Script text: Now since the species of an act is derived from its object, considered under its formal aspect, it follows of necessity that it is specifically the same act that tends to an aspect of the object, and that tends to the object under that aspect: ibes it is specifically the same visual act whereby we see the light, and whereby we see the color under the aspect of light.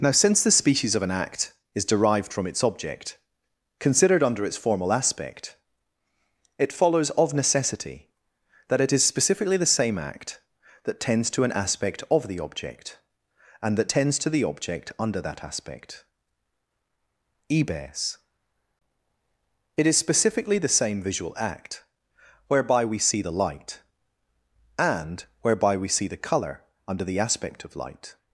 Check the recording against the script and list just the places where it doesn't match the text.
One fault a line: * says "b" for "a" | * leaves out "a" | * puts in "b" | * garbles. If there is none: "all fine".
all fine